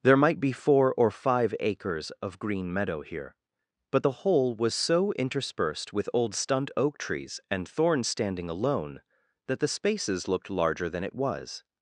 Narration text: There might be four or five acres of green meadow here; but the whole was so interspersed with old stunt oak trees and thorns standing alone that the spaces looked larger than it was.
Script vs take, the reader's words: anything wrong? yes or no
no